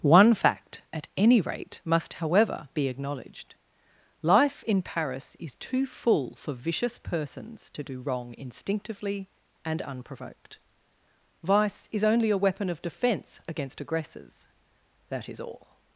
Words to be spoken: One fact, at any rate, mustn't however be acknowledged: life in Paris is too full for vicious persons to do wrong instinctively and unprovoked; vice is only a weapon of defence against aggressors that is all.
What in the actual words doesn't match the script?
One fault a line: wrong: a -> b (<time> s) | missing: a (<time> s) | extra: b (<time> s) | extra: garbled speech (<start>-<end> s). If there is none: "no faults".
wrong: mustn't -> must (1.9 s)